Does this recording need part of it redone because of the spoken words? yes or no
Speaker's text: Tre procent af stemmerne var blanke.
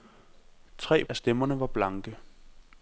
yes